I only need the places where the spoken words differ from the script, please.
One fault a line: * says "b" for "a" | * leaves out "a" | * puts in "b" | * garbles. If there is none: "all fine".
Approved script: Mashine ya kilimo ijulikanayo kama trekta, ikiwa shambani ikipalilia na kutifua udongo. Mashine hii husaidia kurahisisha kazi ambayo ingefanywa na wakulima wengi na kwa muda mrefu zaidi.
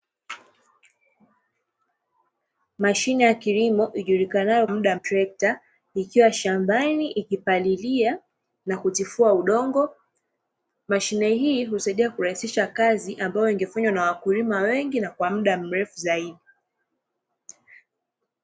* says "muda" for "kama"